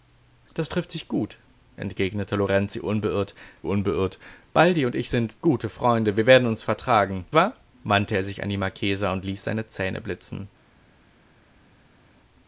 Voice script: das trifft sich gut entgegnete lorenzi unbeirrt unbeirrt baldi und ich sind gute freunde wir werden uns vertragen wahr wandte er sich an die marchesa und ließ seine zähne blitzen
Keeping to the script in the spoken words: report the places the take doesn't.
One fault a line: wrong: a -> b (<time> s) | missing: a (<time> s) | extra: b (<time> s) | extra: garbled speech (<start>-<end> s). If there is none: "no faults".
no faults